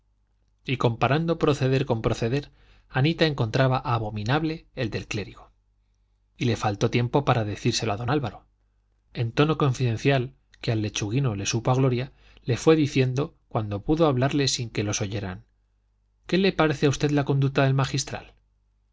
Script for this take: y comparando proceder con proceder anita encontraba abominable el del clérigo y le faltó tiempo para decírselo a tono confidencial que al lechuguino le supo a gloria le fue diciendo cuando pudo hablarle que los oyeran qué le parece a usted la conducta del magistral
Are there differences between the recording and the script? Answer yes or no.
yes